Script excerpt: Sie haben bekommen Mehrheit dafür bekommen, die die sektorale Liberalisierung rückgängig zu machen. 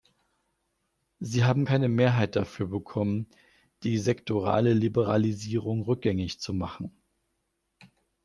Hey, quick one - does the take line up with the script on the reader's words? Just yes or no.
no